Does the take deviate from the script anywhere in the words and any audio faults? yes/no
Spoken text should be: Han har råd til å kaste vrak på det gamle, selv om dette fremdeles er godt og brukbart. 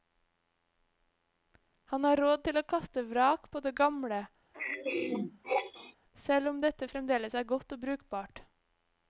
yes